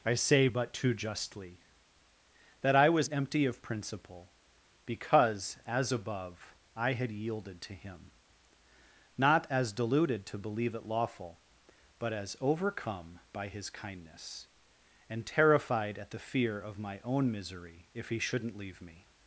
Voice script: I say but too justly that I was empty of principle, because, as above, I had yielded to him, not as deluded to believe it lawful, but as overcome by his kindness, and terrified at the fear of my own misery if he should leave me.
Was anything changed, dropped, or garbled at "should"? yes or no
yes